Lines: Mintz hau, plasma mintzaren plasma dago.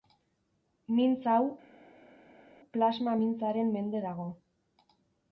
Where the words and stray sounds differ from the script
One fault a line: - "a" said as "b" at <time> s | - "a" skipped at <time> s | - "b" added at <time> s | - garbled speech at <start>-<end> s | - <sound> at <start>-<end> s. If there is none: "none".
- "plasma" said as "mende" at 3.8 s